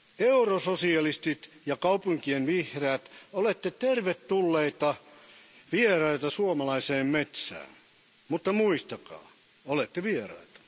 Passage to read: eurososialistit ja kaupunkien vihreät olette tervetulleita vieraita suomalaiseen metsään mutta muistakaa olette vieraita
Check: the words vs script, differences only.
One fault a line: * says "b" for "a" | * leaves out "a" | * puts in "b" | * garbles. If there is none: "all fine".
all fine